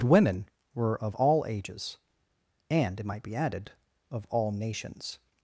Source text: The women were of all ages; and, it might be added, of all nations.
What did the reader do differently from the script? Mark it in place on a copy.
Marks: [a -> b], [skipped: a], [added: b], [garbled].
[skipped: The] women were of all ages; and, it might be added, of all nations.